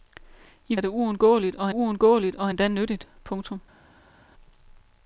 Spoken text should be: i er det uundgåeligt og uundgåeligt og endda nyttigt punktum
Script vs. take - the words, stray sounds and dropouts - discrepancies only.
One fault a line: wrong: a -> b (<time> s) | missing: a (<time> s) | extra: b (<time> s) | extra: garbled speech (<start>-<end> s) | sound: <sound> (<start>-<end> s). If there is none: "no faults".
no faults